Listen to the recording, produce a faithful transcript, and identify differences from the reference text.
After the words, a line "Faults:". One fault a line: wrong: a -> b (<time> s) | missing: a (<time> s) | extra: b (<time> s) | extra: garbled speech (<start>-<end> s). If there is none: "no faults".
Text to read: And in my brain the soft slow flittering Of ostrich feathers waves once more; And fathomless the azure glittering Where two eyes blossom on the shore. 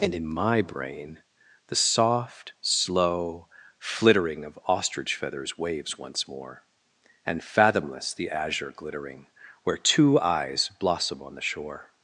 And in my brain the soft slow flittering Of ostrich feathers waves once more; And fathomless the azure glittering Where two eyes blossom on the shore.
Faults:
no faults